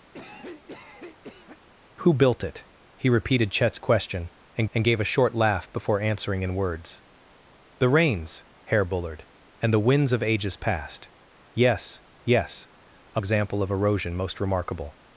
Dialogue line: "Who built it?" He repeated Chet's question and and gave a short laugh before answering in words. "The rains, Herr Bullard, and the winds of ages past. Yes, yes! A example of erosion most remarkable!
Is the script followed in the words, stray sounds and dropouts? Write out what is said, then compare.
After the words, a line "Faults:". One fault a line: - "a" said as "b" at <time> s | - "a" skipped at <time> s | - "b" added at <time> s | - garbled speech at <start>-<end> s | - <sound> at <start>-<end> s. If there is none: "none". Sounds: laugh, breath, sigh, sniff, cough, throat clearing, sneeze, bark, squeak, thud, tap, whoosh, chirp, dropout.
"Who built it?" He repeated Chet's question and and gave a short laugh before answering in words. "The rains, Herr Bullard, and the winds of ages past. Yes, yes! A example of erosion most remarkable!
Faults:
- cough at 0.1-1.6 s